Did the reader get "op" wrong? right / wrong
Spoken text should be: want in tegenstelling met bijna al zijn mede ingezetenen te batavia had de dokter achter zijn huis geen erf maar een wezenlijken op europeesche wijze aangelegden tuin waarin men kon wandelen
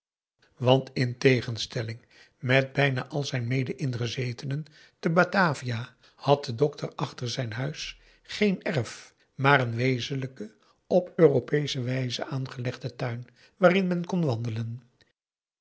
right